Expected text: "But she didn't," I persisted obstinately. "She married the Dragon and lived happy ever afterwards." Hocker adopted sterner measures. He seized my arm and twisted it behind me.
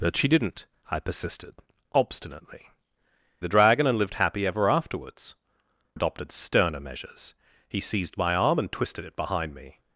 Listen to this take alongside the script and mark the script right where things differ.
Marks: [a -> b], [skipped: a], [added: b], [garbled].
"But she didn't," I persisted obstinately. [skipped: "She married] the Dragon and lived happy ever afterwards." [skipped: Hocker] adopted sterner measures. He seized my arm and twisted it behind me.